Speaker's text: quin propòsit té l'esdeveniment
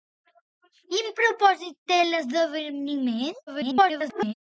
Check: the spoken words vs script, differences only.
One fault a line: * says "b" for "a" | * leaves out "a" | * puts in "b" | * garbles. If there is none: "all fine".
* garbles